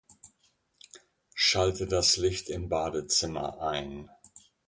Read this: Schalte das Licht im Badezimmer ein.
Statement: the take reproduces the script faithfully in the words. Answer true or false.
true